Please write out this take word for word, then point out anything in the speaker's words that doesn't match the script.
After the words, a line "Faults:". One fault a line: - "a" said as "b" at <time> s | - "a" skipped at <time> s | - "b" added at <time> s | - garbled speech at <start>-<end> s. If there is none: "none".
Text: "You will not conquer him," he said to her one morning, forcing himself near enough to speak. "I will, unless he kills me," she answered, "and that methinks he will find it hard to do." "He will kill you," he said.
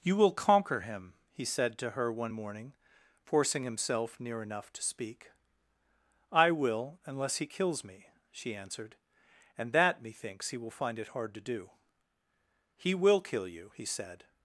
"You will conquer him," he said to her one morning, forcing himself near enough to speak. "I will, unless he kills me," she answered, "and that methinks he will find it hard to do." "He will kill you," he said.
Faults:
- "not" skipped at 0.3 s